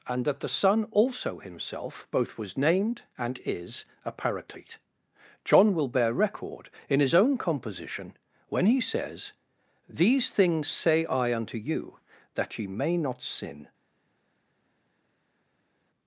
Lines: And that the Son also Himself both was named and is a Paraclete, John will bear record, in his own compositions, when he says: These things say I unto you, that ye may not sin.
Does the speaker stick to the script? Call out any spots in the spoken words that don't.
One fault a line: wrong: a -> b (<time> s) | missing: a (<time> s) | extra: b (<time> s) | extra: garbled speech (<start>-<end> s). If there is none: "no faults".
wrong: compositions -> composition (7.4 s)